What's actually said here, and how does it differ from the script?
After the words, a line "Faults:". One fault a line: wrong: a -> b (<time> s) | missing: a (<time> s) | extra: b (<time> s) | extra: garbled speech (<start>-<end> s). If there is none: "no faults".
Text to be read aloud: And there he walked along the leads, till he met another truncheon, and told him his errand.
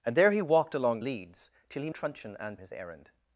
And there he walked along leads, till he truncheon, and his errand.
Faults:
missing: the (1.0 s)
missing: met another (1.9 s)
missing: told him (2.6 s)